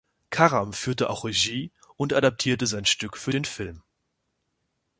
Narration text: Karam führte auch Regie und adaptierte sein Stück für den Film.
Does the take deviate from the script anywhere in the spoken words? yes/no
no